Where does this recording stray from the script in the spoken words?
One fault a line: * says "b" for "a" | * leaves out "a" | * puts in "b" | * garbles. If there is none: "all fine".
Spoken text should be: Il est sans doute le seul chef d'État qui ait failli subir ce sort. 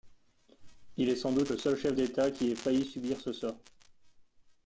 all fine